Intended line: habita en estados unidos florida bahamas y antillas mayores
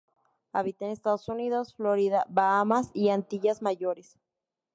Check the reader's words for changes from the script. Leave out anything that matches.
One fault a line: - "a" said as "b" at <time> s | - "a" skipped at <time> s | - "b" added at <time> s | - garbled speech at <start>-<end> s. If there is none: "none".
none